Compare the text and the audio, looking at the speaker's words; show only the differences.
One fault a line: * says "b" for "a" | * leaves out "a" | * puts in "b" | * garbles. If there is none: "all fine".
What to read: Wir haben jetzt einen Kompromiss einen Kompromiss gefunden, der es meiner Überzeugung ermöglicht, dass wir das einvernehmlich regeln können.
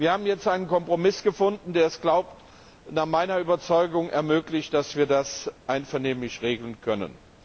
* leaves out "einen Kompromiss"
* puts in "nach"